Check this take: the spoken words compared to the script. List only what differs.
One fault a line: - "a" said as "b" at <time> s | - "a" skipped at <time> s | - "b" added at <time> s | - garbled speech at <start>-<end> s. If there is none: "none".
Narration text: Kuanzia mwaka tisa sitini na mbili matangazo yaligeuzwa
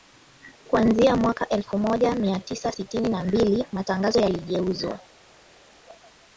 - "elfu moja mia" added at 1.5 s